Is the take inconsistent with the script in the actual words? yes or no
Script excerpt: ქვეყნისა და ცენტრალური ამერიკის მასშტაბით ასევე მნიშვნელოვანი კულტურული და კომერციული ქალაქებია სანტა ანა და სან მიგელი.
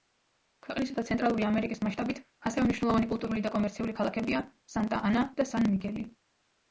no